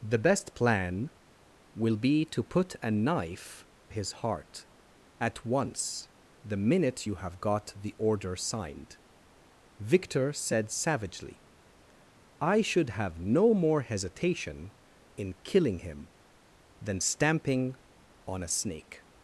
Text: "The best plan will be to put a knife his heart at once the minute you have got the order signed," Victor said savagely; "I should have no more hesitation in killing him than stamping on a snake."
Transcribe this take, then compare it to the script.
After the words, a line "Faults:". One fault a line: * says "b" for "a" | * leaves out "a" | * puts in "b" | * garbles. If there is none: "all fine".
"The best plan will be to put a knife his heart at once the minute you have got the order signed," Victor said savagely; "I should have no more hesitation in killing him than stamping on a snake."
Faults:
all fine